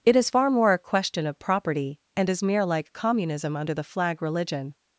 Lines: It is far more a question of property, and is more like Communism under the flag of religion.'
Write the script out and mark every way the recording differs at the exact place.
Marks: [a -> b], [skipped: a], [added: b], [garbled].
It is far more a question of property, and is [more -> mere] like Communism under the flag [skipped: of] religion.'